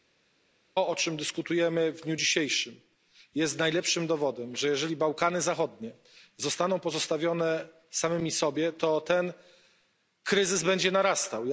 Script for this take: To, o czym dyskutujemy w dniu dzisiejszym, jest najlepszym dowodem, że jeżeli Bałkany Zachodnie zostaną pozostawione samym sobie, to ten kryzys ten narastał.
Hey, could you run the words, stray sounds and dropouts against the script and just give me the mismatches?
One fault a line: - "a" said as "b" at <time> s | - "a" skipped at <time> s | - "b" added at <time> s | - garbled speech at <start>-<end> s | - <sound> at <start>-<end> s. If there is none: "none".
- "ten" said as "będzie" at 10.6 s